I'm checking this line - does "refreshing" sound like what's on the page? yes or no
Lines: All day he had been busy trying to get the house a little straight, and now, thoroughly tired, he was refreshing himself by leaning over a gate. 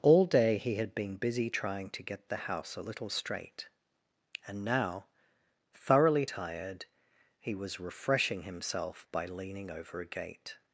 yes